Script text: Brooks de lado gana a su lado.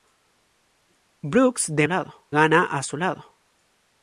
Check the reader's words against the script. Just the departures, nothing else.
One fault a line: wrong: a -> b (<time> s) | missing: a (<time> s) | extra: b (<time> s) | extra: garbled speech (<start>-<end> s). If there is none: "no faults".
no faults